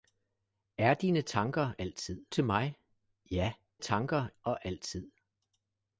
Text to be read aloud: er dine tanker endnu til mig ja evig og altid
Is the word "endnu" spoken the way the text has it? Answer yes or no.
no